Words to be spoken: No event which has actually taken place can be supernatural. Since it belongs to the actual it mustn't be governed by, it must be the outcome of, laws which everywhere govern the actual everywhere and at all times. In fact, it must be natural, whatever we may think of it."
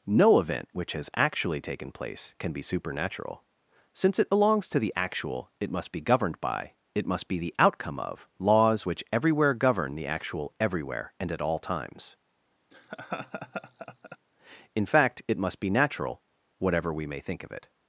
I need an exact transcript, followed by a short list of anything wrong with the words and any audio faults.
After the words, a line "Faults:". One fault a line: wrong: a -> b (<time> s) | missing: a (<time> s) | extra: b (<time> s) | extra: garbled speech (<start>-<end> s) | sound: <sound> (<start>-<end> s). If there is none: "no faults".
No event which has actually taken place can be supernatural. Since it belongs to the actual it must be governed by, it must be the outcome of, laws which everywhere govern the actual everywhere and at all times. In fact, it must be natural, whatever we may think of it."
Faults:
wrong: mustn't -> must (5.7 s)
sound: laugh (12.7-14.2 s)